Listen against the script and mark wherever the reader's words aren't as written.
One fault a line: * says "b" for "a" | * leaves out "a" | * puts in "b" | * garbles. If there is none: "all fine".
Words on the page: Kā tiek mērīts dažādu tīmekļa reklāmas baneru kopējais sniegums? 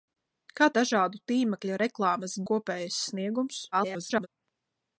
* leaves out "tiek mērīts"
* leaves out "baneru"
* garbles